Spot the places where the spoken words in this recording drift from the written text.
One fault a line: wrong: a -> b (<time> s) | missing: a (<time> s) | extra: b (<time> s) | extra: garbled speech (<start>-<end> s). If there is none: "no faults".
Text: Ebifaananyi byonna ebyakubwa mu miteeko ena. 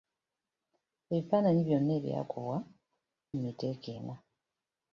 no faults